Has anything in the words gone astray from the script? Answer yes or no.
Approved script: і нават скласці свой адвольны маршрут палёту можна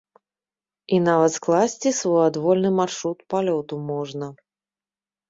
no